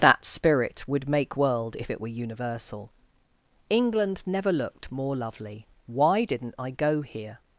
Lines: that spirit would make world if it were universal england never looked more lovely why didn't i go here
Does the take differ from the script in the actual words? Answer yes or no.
no